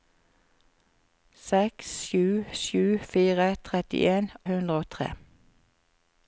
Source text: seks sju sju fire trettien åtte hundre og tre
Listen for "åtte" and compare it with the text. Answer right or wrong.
wrong